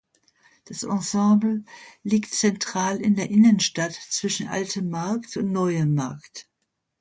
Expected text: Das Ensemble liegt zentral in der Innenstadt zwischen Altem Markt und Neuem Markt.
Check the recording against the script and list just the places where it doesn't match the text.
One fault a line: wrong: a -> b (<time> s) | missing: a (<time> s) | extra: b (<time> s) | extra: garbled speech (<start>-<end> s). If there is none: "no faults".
no faults